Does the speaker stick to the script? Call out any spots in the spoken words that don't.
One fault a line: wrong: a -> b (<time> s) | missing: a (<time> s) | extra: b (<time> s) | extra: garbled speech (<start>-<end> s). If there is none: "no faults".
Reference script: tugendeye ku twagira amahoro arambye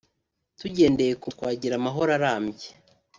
no faults